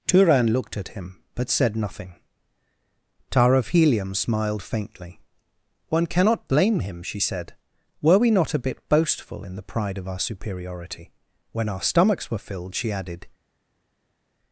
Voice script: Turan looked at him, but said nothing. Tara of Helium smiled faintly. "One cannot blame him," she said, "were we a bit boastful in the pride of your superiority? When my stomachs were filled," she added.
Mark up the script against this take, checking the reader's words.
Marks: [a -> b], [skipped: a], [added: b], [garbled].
Turan looked at him, but said nothing. Tara of Helium smiled faintly. "One cannot blame him," she said, "were we [added: not] a bit boastful in the pride of [your -> our] superiority? When [my -> our] stomachs were filled," she added.